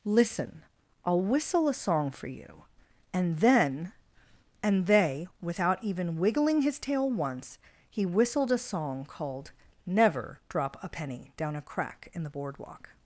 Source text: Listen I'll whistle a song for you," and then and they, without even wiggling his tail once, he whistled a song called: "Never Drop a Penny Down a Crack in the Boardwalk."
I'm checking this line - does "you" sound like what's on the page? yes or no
yes